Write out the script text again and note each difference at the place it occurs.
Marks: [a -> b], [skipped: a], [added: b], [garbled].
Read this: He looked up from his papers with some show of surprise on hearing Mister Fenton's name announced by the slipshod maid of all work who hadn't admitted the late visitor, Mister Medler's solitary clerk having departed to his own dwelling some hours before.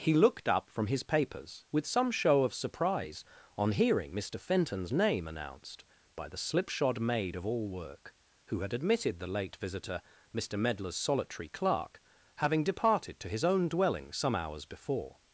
He looked up from his papers with some show of surprise on hearing Mister Fenton's name announced by the slipshod maid of all work who [hadn't -> had] admitted the late visitor, Mister Medler's solitary clerk having departed to his own dwelling some hours before.